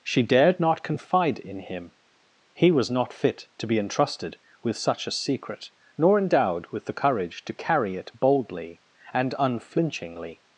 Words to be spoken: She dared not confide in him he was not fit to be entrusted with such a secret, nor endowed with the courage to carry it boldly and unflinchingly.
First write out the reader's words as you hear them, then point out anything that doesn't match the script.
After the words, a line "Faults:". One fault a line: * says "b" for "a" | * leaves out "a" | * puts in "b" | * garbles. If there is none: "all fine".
She dared not confide in him he was not fit to be entrusted with such a secret, nor endowed with the courage to carry it boldly and unflinchingly.
Faults:
all fine